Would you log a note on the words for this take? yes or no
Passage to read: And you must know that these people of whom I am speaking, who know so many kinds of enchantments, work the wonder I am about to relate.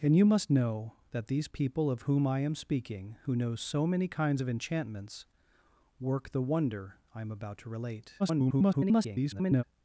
yes